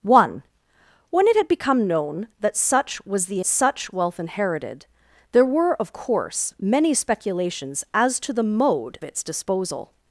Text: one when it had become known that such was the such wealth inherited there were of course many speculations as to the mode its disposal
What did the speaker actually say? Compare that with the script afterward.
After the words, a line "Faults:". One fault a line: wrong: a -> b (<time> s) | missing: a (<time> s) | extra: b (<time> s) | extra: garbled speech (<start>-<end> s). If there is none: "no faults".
one when it had become known that such was the such wealth inherited there were of course many speculations as to the mode its disposal
Faults:
no faults